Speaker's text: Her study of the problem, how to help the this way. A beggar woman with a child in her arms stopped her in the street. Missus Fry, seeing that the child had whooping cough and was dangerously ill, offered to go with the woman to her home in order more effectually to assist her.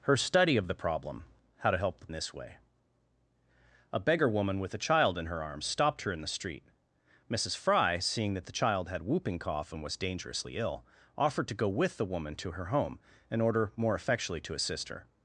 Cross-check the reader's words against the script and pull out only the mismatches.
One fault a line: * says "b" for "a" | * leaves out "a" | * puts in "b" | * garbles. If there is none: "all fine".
all fine